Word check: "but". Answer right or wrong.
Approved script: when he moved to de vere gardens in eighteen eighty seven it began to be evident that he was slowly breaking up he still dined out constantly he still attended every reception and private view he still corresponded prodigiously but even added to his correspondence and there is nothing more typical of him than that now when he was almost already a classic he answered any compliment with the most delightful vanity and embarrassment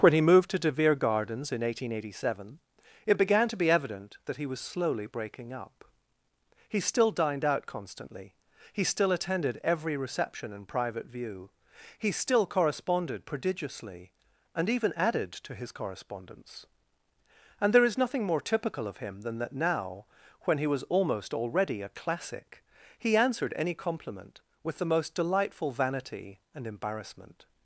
wrong